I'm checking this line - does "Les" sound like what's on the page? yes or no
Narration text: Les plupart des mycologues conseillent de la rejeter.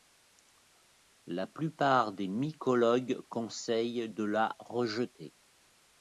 no